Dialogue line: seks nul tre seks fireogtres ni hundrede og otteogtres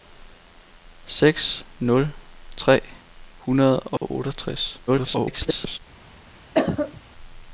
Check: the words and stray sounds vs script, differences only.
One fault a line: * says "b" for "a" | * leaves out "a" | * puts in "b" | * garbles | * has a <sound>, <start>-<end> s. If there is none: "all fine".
* leaves out "seks fireogtres ni"
* has a dropout, 4.0-4.0 s
* garbles
* has a cough, 6.5-7.0 s